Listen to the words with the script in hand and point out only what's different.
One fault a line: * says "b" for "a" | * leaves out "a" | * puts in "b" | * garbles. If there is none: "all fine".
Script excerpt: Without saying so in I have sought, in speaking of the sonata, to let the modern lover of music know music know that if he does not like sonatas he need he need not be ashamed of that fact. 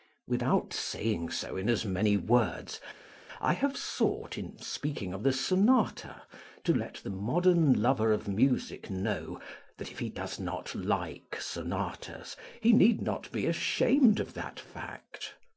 * puts in "as many words"
* leaves out "music know"
* leaves out "he need"